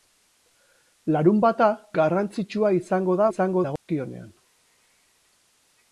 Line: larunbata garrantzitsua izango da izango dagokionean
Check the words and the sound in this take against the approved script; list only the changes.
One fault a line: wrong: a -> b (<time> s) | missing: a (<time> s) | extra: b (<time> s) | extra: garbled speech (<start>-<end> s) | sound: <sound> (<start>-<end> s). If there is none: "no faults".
sound: dropout (3.8-3.9 s)